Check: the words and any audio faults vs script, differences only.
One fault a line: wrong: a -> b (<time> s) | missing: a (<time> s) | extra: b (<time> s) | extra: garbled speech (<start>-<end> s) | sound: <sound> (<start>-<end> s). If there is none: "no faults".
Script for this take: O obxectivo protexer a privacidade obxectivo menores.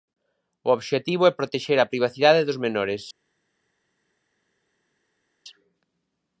extra: é (1.3 s)
wrong: obxectivo -> dos (2.5 s)